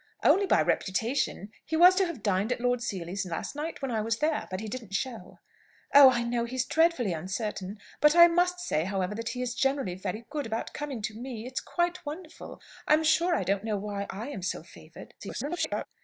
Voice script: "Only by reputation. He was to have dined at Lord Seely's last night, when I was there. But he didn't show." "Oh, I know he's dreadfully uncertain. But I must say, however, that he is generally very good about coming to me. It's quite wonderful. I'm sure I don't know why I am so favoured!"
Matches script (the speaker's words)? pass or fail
fail